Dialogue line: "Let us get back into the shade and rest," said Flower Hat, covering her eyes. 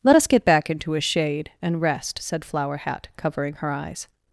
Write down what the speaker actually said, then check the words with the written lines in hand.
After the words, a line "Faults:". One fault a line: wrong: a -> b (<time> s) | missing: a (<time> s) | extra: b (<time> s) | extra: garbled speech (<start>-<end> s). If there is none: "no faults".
"Let us get back into a shade and rest," said Flower Hat, covering her eyes.
Faults:
wrong: the -> a (0.9 s)